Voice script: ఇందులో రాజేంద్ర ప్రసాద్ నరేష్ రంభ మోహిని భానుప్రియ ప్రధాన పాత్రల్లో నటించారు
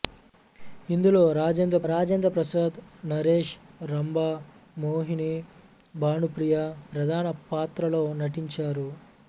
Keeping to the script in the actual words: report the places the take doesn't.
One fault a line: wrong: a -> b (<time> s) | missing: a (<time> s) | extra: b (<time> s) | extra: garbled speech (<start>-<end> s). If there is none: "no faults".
extra: రాజేంద్ర (1.9 s)